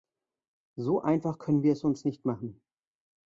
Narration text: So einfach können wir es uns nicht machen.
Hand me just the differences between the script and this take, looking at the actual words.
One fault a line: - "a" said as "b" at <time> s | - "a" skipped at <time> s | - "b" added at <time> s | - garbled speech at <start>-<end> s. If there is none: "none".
none